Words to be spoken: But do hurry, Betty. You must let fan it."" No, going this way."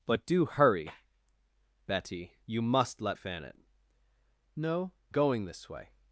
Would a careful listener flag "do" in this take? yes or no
no